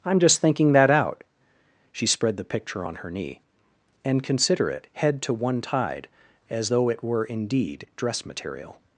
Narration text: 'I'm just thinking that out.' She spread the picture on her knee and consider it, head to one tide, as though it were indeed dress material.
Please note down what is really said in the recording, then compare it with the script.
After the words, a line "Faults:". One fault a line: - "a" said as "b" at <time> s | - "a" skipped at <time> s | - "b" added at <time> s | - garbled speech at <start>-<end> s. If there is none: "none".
'I'm just thinking that out.' She spread the picture on her knee and consider it, head to one tide, as though it were indeed dress material.
Faults:
none